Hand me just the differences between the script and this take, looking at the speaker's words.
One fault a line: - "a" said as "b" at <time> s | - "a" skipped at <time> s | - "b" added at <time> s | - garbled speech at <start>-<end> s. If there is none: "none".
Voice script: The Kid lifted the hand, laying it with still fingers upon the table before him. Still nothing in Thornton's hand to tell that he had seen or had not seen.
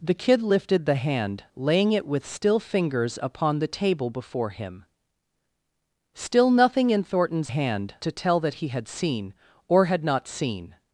none